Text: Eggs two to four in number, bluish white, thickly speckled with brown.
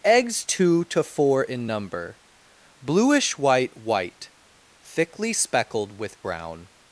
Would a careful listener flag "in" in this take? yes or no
no